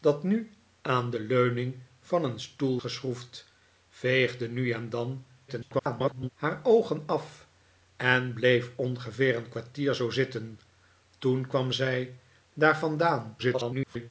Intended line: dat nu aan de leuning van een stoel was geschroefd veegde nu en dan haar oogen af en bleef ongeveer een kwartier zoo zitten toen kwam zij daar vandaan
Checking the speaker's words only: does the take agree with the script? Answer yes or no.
no